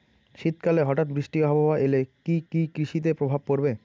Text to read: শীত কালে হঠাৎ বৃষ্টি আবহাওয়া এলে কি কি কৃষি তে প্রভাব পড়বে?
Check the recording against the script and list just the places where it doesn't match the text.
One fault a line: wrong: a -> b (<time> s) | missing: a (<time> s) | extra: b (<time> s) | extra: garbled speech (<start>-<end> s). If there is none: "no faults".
no faults